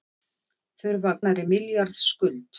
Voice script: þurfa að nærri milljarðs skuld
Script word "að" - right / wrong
right